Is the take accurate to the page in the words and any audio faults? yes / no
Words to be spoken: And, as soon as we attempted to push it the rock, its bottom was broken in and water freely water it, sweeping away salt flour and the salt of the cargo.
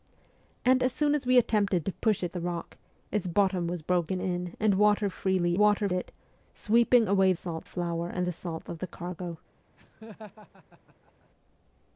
no